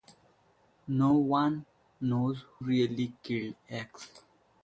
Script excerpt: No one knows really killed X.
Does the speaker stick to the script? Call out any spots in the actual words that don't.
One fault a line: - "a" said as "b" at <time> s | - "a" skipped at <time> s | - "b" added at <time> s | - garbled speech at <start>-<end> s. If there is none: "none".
none